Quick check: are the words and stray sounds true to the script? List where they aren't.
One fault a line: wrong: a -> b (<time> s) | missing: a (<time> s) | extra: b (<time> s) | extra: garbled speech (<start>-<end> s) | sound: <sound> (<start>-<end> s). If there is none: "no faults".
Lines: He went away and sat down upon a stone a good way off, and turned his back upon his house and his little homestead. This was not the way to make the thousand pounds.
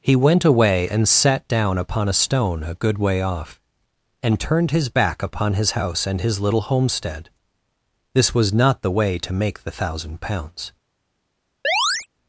sound: chirp (11.6-12.1 s)